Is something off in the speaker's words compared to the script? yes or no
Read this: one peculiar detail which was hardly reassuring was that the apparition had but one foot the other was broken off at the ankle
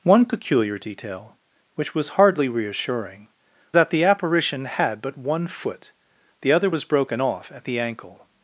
yes